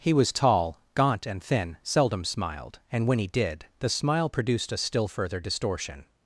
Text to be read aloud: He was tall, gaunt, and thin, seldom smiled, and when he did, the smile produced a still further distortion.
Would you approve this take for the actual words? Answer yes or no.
yes